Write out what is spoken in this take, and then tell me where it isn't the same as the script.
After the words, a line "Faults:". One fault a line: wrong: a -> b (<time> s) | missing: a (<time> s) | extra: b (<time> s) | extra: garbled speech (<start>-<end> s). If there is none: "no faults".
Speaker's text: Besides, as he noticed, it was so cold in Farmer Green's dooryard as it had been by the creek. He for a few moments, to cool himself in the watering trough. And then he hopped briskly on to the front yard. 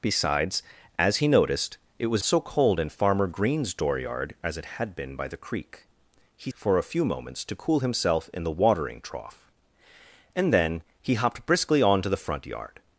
Besides, as he noticed, it was so cold in Farmer Green's dooryard as it had been by the creek. He for a few moments, to cool himself in the watering trough. And then he hopped briskly on to the front yard.
Faults:
no faults